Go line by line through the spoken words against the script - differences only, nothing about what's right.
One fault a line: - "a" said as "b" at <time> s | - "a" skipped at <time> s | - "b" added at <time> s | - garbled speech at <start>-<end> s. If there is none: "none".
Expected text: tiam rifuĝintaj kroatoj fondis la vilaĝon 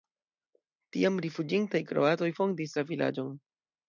none